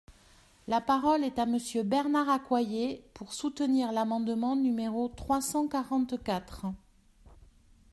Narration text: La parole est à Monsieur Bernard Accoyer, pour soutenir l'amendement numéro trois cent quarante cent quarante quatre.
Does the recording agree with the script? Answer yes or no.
no